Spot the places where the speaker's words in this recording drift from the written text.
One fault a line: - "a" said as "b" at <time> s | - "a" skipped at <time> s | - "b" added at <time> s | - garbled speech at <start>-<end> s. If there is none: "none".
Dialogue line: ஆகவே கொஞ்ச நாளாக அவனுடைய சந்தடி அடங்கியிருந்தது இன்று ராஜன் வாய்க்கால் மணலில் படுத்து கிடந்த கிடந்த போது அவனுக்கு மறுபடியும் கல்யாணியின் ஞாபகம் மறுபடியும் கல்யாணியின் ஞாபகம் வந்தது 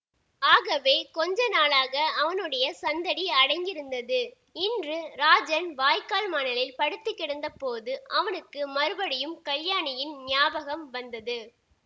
- "கிடந்த" skipped at 7.5 s
- "மறுபடியும் கல்யாணியின் ஞாபகம்" skipped at 10.8 s